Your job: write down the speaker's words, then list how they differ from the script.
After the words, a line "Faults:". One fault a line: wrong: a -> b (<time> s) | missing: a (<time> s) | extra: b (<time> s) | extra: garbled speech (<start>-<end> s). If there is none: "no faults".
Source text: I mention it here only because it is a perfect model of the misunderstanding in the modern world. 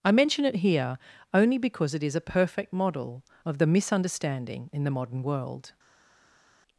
I mention it here only because it is a perfect model of the misunderstanding in the modern world.
Faults:
no faults